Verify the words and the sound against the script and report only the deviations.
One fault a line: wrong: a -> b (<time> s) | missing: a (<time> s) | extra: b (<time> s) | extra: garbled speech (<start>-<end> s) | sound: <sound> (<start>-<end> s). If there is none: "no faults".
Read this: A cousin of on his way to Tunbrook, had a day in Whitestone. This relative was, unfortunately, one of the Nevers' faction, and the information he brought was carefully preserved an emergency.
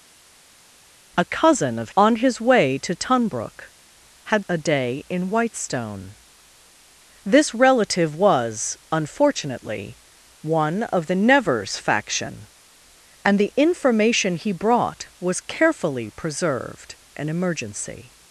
no faults